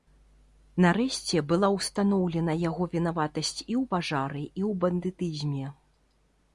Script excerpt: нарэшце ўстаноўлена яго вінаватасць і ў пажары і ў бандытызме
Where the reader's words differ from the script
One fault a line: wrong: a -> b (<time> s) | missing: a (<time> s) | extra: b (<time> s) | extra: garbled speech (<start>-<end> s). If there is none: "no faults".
extra: была (1.5 s)